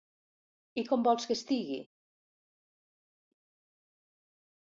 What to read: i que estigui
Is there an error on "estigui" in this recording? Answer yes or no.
no